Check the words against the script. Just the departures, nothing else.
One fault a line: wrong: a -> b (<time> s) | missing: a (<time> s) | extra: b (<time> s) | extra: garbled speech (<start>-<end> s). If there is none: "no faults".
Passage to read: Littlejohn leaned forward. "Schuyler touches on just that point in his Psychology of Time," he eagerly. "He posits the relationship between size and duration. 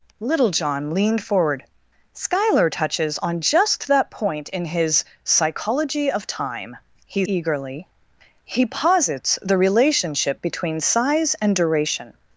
no faults